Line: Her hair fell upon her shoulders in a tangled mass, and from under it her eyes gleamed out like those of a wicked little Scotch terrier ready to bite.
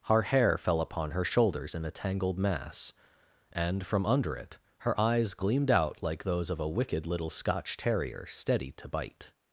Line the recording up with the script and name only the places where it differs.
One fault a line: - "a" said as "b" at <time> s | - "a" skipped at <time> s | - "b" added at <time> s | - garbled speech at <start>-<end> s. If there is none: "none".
- "ready" said as "steady" at 8.3 s